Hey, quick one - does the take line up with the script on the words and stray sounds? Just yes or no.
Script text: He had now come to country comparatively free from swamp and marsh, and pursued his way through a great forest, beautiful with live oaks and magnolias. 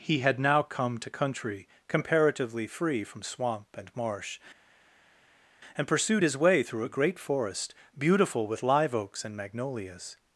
yes